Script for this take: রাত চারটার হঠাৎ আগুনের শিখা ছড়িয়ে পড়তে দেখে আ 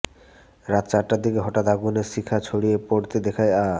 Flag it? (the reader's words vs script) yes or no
yes